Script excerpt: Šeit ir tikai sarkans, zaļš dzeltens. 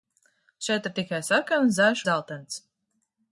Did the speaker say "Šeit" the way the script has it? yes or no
yes